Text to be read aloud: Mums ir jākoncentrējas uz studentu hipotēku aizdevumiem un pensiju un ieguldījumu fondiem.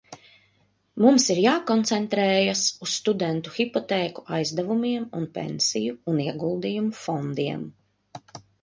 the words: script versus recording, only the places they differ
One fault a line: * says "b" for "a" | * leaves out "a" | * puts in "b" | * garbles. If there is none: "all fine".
all fine